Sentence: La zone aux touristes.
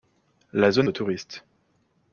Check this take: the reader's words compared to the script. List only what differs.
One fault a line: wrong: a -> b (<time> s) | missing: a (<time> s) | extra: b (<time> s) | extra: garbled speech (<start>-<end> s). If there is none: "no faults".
no faults